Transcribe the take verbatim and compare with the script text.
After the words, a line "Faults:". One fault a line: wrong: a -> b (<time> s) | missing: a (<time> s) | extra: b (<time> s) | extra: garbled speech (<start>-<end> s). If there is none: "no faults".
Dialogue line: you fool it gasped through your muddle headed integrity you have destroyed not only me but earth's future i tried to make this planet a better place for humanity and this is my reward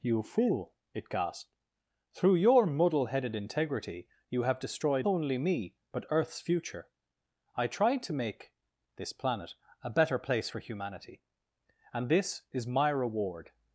you fool it gasped through your muddle headed integrity you have destroyed only me but earth's future i tried to make this planet a better place for humanity and this is my reward
Faults:
missing: not (5.1 s)